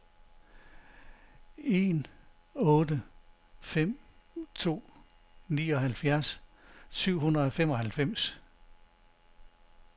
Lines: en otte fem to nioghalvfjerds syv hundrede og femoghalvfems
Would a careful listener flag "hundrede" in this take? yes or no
no